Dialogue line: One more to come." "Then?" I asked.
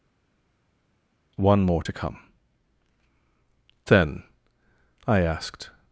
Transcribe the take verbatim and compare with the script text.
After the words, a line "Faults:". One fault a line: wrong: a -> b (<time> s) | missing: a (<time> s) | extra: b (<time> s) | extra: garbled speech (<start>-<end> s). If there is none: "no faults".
One more to come." "Then?" I asked.
Faults:
no faults